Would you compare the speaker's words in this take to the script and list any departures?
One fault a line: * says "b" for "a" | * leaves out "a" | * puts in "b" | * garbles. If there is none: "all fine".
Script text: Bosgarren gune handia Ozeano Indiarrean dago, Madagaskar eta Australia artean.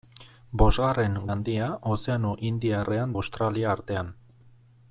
* leaves out "gune"
* leaves out "dago Madagaskar eta"